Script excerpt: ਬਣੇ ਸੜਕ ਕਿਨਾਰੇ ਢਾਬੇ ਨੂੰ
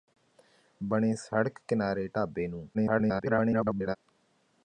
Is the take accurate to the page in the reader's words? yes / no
no